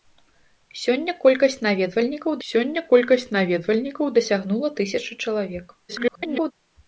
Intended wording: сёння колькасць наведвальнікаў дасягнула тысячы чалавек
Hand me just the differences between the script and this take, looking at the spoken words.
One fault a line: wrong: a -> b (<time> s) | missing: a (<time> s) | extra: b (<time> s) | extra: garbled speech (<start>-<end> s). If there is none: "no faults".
extra: сёння колькасць наведвальнікаў (2.5 s)
extra: garbled speech (5.9-6.5 s)